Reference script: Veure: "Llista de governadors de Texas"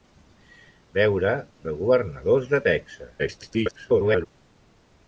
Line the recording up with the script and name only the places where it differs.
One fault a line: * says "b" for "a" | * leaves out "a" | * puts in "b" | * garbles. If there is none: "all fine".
* leaves out "Llista"
* garbles